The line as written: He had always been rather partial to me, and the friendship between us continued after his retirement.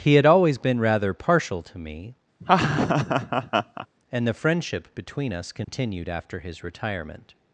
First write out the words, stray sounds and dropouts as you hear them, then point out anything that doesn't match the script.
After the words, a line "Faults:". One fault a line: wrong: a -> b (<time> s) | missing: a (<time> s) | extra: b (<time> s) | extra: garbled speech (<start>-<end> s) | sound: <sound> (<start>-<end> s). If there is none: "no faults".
He had always been rather partial to me, and the friendship between us continued after his retirement.
Faults:
sound: laugh (2.4-3.9 s)
sound: dropout (5.6-5.7 s)